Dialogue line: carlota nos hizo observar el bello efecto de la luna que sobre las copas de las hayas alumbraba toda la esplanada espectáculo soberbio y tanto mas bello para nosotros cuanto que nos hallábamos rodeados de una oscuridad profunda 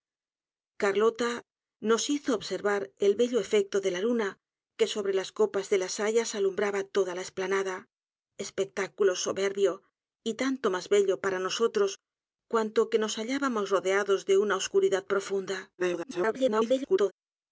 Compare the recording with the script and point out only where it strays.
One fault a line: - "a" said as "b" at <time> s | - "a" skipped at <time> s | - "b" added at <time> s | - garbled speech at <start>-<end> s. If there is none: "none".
- garbled speech at 15.8-17.1 s